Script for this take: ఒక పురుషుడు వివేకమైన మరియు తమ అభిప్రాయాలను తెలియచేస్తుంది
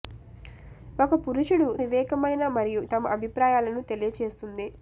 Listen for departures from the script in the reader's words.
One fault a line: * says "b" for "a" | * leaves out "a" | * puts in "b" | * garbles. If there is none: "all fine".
all fine